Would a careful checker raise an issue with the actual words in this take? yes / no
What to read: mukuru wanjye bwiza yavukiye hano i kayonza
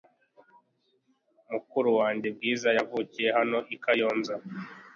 no